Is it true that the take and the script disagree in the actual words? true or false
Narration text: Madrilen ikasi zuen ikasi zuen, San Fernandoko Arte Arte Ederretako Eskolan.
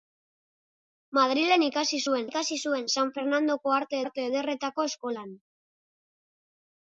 false